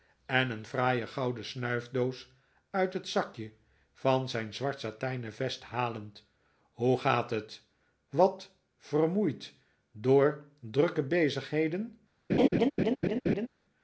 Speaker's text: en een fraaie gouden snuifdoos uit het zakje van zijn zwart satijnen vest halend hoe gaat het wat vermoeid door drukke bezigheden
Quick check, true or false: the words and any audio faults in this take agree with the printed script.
false